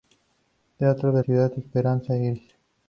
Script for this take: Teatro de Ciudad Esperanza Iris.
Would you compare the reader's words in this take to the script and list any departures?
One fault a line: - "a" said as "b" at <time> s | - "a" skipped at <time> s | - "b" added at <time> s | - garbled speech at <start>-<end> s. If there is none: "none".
none